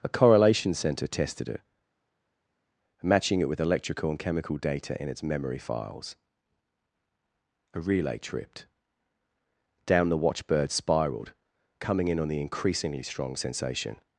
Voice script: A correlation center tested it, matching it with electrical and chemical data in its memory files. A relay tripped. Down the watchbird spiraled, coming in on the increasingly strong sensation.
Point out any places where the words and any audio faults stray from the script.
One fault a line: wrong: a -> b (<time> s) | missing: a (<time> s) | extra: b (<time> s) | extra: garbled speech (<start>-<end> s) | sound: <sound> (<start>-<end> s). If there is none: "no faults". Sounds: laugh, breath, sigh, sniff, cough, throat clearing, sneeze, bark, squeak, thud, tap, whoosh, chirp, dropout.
no faults